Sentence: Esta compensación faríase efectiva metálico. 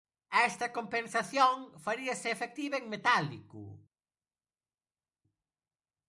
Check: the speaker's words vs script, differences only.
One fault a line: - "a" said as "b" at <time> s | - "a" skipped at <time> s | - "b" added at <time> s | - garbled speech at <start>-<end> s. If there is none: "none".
- "en" added at 2.8 s